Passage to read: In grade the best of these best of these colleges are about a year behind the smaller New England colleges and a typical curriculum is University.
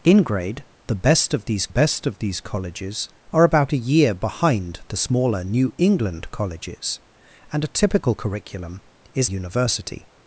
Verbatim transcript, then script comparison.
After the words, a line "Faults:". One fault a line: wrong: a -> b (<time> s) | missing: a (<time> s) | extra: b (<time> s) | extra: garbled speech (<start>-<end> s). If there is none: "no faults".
In grade the best of these best of these colleges are about a year behind the smaller New England colleges and a typical curriculum is University.
Faults:
no faults